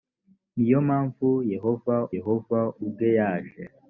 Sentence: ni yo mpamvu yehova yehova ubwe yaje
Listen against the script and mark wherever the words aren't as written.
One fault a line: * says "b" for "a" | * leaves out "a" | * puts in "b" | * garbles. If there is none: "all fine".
all fine